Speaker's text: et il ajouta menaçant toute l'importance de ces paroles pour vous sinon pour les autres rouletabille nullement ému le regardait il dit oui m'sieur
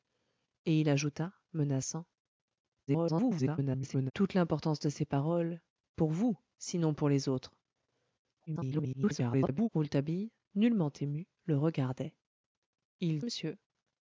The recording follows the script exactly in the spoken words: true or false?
false